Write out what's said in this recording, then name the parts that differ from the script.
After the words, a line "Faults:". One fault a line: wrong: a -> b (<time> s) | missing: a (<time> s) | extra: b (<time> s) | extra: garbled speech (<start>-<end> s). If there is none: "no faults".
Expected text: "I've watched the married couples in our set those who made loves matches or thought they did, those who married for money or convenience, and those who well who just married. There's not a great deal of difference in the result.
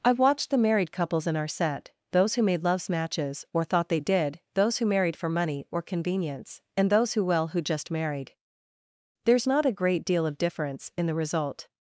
"I've watched the married couples in our set those who made loves matches or thought they did, those who married for money or convenience, and those who well who just married. There's not a great deal of difference in the result.
Faults:
no faults